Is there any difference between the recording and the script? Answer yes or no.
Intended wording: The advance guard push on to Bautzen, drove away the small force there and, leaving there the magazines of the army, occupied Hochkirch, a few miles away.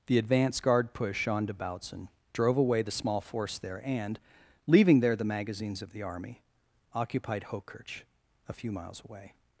no